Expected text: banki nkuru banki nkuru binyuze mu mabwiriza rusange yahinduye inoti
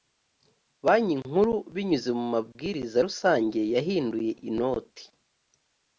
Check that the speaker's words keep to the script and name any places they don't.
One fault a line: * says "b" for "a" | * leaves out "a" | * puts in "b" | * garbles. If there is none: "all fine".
* leaves out "banki nkuru"